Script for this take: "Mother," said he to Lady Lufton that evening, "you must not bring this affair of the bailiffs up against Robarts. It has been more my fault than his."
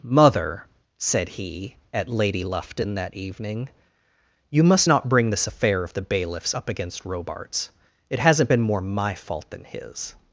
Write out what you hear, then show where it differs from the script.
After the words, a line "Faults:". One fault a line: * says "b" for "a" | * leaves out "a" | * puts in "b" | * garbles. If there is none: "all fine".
"Mother," said he at Lady Lufton that evening, "you must not bring this affair of the bailiffs up against Robarts. It hasn't been more my fault than his."
Faults:
* says "at" for "to"
* says "hasn't" for "has"